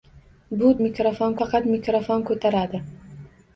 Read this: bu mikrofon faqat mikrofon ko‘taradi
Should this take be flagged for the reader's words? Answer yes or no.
no